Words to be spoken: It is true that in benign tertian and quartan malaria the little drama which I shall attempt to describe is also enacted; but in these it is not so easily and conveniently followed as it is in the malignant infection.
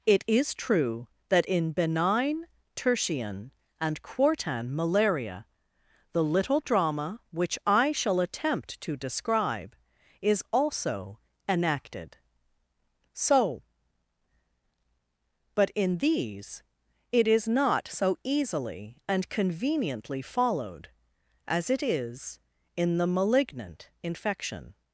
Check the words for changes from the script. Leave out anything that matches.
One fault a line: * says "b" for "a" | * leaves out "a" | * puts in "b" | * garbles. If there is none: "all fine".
* puts in "so"